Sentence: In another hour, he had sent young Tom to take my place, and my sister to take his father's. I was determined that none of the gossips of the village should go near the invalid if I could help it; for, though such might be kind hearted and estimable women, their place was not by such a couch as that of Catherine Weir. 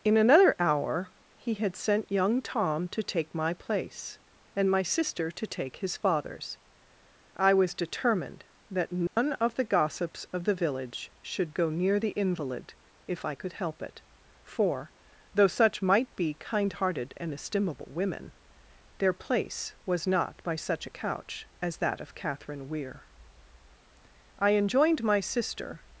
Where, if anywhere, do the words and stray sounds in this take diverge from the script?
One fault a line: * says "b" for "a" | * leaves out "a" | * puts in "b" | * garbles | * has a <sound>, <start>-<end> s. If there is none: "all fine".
* has a dropout, 9.1-9.2 s
* puts in "I enjoined my sister"